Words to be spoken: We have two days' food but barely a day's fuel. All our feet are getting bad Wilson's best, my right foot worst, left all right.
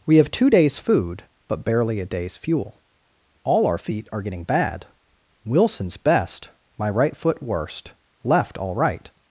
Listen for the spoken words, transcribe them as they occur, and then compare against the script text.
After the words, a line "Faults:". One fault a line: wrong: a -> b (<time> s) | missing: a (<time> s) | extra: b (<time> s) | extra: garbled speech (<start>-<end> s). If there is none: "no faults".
We have two days' food but barely a day's fuel. All our feet are getting bad Wilson's best, my right foot worst, left all right.
Faults:
no faults